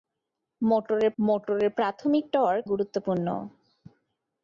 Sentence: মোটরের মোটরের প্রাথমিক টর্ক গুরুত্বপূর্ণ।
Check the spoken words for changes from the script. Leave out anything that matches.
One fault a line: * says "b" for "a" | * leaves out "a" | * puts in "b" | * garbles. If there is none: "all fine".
all fine